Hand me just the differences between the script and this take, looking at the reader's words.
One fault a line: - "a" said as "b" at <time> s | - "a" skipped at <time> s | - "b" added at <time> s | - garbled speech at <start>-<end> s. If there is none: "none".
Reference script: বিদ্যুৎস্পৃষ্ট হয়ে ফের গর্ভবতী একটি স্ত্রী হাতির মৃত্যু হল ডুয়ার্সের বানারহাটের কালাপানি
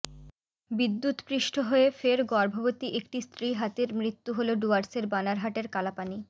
none